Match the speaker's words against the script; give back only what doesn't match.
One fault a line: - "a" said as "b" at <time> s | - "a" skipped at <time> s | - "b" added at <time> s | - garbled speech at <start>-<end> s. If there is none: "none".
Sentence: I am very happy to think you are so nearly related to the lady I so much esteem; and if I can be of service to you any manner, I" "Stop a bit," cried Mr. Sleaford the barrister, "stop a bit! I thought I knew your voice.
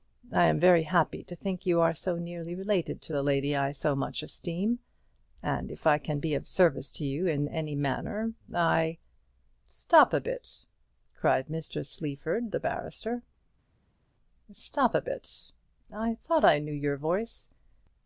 - "in" added at 7.2 s